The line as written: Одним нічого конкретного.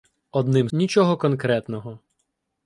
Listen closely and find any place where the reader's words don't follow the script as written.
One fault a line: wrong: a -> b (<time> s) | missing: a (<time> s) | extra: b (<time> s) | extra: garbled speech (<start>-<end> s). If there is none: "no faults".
no faults